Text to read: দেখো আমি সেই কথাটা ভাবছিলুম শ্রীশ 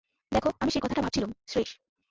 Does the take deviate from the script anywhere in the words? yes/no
no